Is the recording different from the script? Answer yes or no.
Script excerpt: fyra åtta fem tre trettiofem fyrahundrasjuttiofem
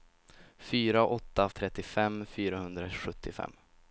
yes